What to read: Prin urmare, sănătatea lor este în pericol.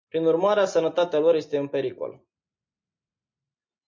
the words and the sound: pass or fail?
pass